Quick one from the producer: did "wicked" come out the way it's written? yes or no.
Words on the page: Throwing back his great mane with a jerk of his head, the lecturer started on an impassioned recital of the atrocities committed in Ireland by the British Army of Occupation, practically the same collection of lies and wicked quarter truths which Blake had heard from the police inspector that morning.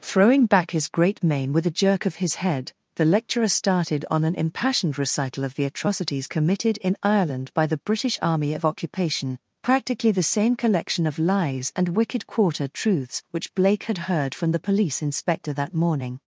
yes